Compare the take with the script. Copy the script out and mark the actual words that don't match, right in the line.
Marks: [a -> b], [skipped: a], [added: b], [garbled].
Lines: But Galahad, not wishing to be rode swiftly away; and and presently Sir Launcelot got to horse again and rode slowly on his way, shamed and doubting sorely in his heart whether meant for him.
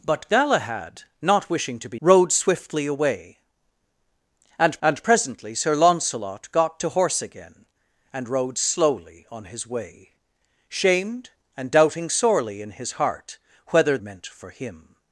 But Galahad, not wishing to be rode swiftly away; and and presently Sir Launcelot got to horse again and rode slowly on his way, shamed and doubting sorely in his heart whether meant for him.